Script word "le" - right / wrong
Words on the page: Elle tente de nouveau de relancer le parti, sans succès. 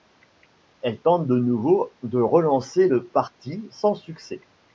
right